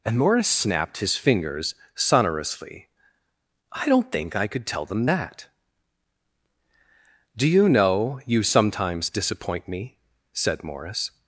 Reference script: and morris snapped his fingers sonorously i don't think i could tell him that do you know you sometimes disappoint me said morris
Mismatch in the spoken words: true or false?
true